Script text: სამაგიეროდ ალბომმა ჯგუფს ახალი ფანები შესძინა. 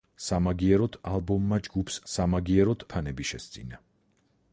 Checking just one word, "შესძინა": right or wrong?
right